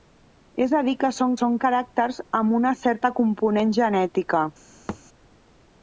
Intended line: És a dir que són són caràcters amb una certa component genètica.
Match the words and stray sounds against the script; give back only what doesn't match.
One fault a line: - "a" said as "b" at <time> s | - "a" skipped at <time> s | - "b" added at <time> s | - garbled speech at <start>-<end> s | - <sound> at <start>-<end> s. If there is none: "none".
- thud at 4.9-5.0 s